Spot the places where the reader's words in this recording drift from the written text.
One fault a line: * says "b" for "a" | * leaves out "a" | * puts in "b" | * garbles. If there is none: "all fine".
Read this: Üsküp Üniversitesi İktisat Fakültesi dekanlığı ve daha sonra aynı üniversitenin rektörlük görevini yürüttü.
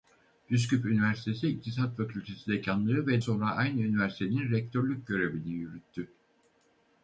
* leaves out "daha"